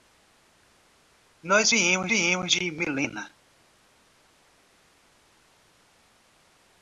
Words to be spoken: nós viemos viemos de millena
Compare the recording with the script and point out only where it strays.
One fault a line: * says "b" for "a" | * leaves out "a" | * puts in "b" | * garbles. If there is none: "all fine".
all fine